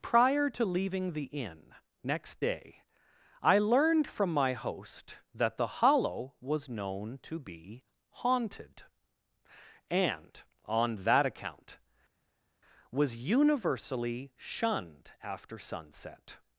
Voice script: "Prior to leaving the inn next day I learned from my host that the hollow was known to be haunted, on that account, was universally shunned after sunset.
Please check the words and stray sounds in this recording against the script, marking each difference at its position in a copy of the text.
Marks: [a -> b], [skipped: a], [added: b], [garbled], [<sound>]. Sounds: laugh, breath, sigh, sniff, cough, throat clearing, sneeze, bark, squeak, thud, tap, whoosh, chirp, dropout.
"Prior to leaving the inn next day I learned from my host that the hollow was known to be haunted, [added: and] on that account, was universally shunned after sunset.